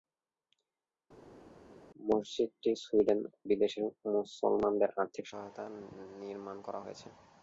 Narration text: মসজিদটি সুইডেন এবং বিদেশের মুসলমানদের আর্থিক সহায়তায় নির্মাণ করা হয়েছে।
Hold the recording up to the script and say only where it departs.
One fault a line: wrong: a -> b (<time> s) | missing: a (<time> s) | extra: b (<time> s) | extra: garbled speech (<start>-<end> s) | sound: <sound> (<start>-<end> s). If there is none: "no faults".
missing: এবং (3.2 s)